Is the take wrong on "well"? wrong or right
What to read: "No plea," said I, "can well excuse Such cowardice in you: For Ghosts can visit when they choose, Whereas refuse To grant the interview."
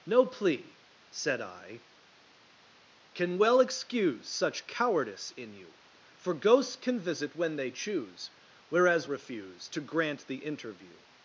right